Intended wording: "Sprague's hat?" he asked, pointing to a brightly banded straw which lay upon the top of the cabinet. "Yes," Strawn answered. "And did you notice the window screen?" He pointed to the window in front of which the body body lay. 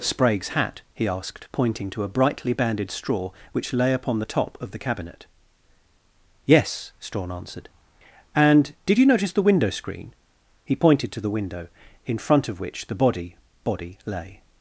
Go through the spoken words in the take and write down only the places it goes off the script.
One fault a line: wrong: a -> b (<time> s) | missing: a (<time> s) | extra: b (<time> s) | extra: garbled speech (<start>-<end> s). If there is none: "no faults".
no faults